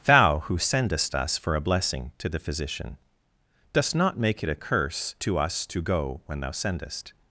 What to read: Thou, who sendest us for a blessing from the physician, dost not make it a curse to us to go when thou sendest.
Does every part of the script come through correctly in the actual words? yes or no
no